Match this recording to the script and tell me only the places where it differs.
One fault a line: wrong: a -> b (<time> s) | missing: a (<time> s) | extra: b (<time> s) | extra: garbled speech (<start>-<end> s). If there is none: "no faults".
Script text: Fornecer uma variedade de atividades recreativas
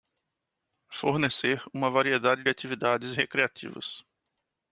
no faults